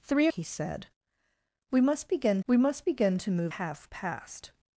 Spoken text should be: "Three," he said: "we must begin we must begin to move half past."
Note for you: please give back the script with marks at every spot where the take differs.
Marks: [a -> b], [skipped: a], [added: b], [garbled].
"Three," he said: "we must begin we must begin to move half past."